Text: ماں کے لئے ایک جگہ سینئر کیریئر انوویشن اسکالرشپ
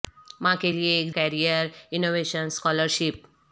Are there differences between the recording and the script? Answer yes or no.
yes